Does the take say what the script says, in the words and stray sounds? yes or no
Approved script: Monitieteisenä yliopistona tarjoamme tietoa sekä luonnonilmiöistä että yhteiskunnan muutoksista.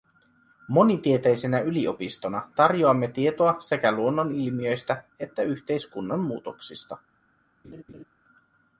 no